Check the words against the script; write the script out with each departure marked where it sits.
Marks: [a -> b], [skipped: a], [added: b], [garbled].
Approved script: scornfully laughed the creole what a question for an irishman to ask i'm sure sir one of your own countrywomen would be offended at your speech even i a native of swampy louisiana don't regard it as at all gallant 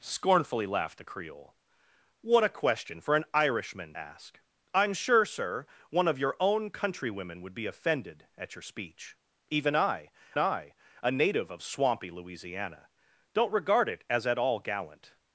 scornfully laughed the creole what a question for an irishman [skipped: to] ask i'm sure sir one of your own countrywomen would be offended at your speech even i [added: i] a native of swampy louisiana don't regard it as at all gallant